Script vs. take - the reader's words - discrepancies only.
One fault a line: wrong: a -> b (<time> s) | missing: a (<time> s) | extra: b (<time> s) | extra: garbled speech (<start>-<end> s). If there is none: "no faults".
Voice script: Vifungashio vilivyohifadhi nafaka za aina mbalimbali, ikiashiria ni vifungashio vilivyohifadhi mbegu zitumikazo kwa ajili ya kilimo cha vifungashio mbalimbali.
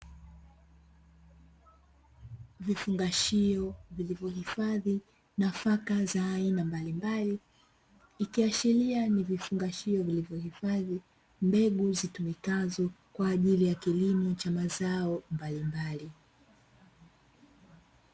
wrong: vifungashio -> mazao (14.5 s)